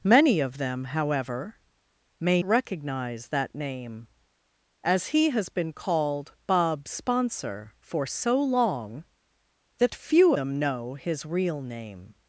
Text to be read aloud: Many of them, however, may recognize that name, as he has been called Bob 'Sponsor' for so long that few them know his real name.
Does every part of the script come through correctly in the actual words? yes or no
yes